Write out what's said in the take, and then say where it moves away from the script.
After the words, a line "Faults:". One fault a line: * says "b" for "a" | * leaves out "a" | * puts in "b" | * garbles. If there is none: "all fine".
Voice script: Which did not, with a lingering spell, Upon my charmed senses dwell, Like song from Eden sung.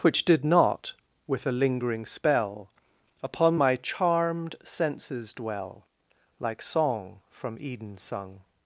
Which did not, with a lingering spell, Upon my charmed senses dwell, Like song from Eden sung.
Faults:
all fine